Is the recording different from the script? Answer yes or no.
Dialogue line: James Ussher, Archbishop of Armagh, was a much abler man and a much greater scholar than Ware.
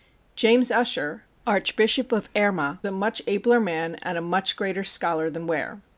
yes